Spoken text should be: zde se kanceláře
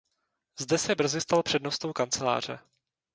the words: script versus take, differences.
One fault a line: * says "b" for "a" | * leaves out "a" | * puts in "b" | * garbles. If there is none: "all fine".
* puts in "brzy stal přednostou"